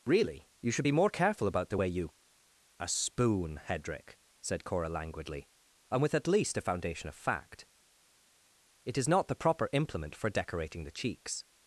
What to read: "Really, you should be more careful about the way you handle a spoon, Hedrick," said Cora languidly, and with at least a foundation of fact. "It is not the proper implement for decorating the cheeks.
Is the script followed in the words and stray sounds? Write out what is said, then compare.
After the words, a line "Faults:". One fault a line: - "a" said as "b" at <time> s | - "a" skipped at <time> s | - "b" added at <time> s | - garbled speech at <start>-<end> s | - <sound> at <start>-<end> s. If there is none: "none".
"Really, you should be more careful about the way you a spoon, Hedrick," said Cora languidly, and with at least a foundation of fact. "It is not the proper implement for decorating the cheeks.
Faults:
- "handle" skipped at 2.1 s